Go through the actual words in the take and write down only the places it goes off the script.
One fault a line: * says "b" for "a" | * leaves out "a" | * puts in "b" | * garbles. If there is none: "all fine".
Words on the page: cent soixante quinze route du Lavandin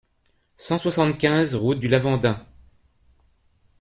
all fine